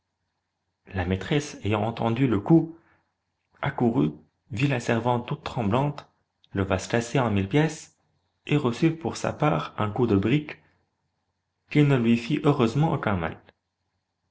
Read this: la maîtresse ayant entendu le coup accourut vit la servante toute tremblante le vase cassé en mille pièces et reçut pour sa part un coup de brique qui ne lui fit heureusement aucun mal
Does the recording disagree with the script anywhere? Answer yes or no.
no